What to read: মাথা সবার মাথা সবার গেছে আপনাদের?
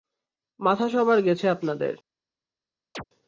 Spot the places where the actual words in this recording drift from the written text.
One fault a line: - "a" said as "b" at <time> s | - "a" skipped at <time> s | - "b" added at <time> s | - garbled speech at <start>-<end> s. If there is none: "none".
- "মাথা সবার" skipped at 1.2 s